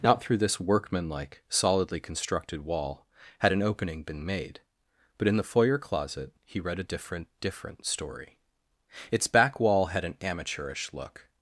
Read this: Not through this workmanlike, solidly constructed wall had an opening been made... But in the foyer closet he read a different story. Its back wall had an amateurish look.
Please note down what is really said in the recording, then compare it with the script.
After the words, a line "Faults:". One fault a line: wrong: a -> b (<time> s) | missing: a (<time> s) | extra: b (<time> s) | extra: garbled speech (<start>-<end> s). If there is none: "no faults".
Not through this workmanlike, solidly constructed wall had an opening been made... But in the foyer closet he read a different different story. Its back wall had an amateurish look.
Faults:
extra: different (7.4 s)